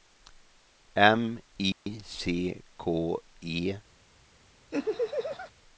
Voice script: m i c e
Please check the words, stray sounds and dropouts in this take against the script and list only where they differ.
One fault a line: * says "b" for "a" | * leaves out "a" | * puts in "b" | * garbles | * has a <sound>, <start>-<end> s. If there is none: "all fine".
* has a dropout, 1.7-1.9 s
* puts in "k"
* has a laugh, 4.7-5.5 s